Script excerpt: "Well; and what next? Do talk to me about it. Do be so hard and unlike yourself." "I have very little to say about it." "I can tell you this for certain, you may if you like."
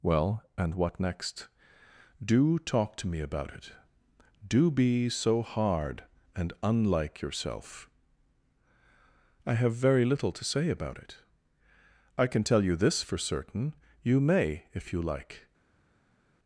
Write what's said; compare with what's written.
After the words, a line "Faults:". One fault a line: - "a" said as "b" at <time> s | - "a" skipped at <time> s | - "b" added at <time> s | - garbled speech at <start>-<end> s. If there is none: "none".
"Well; and what next? Do talk to me about it. Do be so hard and unlike yourself." "I have very little to say about it." "I can tell you this for certain, you may if you like."
Faults:
none